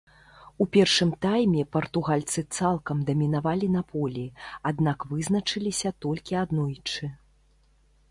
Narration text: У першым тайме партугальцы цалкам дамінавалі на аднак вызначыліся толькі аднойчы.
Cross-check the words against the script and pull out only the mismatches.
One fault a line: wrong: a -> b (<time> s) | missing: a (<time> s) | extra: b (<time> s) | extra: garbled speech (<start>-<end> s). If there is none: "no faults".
extra: полі (3.9 s)